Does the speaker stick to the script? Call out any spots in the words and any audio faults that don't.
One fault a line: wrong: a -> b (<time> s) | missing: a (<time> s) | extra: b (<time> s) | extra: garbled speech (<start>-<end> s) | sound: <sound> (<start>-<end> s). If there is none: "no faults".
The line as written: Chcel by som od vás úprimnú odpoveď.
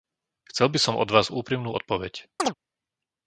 sound: chirp (2.4-2.5 s)